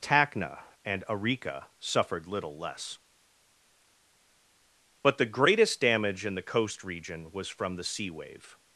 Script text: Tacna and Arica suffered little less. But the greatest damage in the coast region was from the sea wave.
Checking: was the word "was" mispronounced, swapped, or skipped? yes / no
no